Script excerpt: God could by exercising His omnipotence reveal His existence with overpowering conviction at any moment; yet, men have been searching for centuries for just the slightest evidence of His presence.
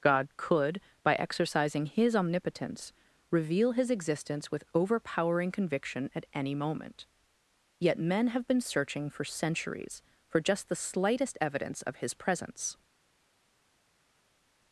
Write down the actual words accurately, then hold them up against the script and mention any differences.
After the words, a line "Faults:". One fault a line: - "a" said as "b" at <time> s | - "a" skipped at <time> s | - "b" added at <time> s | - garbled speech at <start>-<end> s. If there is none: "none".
God could by exercising His omnipotence reveal His existence with overpowering conviction at any moment; yet, men have been searching for centuries for just the slightest evidence of His presence.
Faults:
none